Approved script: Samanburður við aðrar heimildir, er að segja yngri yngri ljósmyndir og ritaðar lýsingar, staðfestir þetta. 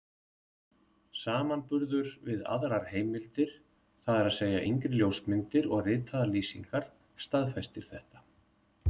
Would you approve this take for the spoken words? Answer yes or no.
no